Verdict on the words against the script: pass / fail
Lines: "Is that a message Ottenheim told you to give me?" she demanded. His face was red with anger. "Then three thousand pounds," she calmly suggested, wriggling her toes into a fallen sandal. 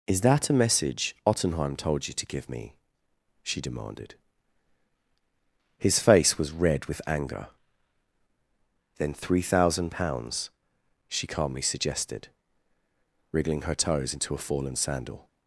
pass